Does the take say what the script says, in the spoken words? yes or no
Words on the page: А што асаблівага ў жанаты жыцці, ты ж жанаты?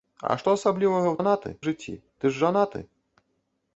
yes